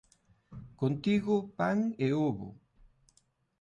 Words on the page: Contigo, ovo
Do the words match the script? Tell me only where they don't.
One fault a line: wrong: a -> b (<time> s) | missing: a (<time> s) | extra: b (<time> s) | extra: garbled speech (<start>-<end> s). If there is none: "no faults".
extra: pan e (1.6 s)